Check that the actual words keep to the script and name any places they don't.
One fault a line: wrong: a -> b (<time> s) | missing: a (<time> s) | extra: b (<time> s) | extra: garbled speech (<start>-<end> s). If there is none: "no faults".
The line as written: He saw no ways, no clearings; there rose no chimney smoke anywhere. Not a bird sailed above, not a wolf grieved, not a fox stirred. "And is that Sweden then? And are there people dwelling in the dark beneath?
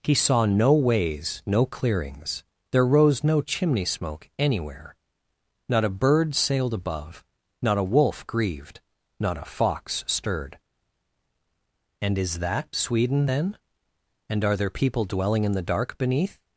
no faults